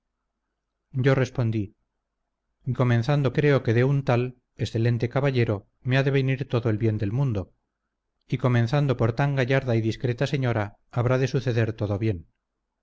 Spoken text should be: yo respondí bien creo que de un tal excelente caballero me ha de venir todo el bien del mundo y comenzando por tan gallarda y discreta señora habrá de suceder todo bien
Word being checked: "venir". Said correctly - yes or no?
yes